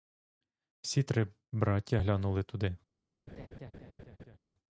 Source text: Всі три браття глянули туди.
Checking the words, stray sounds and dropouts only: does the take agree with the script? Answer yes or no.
no